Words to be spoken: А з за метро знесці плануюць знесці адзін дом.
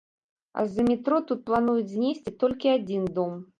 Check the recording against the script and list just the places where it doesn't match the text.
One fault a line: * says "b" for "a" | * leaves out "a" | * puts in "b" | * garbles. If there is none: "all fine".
* says "тут" for "знесці"
* puts in "толькі"